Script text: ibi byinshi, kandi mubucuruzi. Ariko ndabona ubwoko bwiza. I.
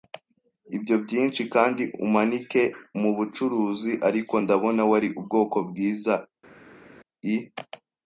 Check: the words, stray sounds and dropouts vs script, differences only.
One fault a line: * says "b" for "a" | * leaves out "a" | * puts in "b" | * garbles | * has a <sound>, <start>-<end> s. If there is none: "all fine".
* says "ibyo" for "ibi"
* puts in "umanike"
* puts in "wari"